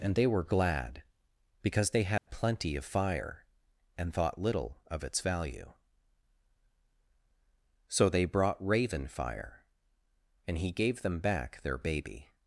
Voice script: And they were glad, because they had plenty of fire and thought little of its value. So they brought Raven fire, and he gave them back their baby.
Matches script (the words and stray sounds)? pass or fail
fail